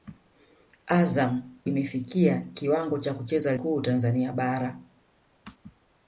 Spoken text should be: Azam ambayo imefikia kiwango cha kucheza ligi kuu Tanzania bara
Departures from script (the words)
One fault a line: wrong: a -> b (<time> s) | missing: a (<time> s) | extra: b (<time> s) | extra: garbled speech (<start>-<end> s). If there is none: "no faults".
missing: ambayo (1.6 s)
missing: ligi (3.6 s)